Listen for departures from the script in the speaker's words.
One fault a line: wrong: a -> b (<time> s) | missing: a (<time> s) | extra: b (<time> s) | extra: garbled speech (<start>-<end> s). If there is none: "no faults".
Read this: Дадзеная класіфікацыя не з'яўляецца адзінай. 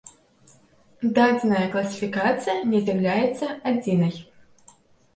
no faults